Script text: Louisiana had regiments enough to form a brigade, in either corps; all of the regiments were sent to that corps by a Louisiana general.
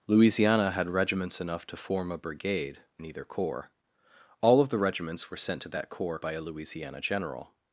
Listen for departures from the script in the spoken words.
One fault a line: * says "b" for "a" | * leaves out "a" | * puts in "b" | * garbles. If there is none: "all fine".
all fine